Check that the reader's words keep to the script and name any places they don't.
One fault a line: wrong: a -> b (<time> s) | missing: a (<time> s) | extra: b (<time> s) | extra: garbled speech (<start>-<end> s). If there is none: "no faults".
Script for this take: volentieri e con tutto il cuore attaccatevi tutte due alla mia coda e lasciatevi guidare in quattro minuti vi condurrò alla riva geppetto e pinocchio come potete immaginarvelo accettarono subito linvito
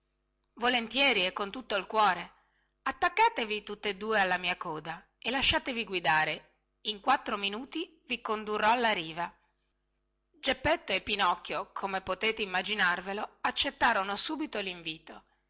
no faults